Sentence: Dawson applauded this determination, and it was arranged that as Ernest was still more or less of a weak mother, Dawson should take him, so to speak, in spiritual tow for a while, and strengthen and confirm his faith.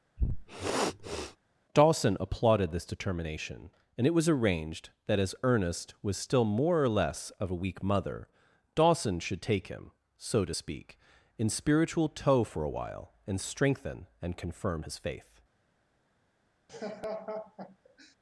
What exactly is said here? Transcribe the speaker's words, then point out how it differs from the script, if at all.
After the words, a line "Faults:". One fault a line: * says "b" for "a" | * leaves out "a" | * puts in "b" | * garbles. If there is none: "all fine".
Dawson applauded this determination, and it was arranged that as Ernest was still more or less of a weak mother, Dawson should take him, so to speak, in spiritual tow for a while, and strengthen and confirm his faith.
Faults:
all fine